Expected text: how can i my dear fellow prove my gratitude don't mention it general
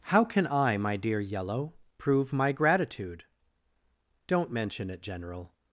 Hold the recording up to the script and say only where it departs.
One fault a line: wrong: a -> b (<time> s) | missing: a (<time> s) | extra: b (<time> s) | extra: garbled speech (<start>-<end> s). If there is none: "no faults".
wrong: fellow -> yellow (1.2 s)